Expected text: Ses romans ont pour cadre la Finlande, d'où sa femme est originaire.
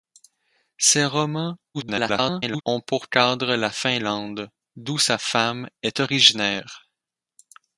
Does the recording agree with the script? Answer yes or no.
no